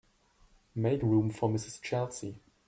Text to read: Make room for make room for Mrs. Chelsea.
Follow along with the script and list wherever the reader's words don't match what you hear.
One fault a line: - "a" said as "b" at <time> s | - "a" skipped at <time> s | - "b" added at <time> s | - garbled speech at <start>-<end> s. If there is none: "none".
- "make room for" skipped at 1.5 s